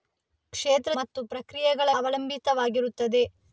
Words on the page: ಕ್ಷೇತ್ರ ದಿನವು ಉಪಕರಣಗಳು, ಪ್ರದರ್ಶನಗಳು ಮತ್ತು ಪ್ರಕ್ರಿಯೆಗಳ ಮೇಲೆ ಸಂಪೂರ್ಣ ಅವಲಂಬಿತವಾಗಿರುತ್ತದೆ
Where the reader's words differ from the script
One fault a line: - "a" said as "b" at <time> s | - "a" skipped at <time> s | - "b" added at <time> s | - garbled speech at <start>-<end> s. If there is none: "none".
- "ದಿನವು ಉಪಕರಣಗಳು ಪ್ರದರ್ಶನಗಳು" skipped at 0.9 s
- "ಮೇಲೆ ಸಂಪೂರ್ಣ" skipped at 1.9 s